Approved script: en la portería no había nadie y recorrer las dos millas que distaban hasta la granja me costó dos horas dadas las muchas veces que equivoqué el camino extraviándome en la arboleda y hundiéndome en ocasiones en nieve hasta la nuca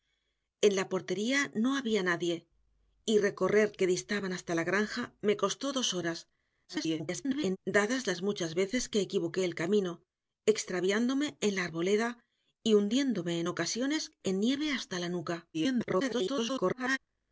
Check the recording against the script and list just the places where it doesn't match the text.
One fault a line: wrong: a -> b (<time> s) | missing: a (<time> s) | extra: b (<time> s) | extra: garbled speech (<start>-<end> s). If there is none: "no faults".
missing: las dos millas (3.7 s)
extra: garbled speech (6.7-7.6 s)
extra: garbled speech (15.5-17.0 s)